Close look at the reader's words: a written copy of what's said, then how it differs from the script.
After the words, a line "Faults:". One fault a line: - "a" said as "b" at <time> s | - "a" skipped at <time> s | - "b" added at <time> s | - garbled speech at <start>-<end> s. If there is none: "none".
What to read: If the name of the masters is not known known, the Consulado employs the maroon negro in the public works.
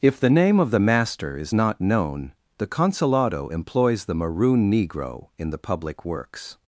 If the name of the master is not known, the Consulado employs the maroon negro in the public works.
Faults:
- "masters" said as "master" at 0.8 s
- "known" skipped at 2.3 s